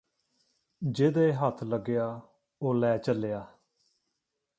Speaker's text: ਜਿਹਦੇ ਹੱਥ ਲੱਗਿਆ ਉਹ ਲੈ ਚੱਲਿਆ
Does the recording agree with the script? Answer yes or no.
yes